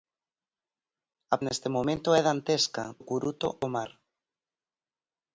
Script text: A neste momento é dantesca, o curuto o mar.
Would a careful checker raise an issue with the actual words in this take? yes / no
no